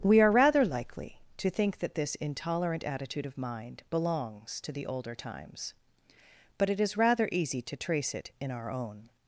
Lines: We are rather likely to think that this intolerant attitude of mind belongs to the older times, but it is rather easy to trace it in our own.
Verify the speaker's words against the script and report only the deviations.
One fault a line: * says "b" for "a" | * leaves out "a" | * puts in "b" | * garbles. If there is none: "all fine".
all fine